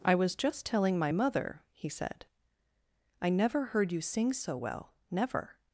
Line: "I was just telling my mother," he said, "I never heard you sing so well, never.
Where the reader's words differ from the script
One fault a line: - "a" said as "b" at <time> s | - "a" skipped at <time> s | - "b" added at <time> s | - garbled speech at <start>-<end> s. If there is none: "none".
none